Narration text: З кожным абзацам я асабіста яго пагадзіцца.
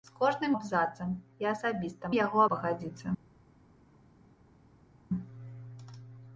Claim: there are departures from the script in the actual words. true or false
false